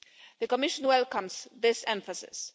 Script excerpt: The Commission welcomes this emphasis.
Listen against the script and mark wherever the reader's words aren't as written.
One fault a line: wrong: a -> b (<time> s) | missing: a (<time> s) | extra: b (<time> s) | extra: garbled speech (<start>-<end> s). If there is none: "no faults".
no faults